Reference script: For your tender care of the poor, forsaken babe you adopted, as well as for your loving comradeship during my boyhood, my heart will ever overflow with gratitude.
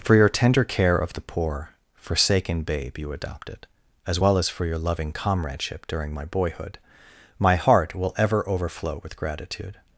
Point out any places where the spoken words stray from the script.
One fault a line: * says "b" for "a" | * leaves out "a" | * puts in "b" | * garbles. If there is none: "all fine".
all fine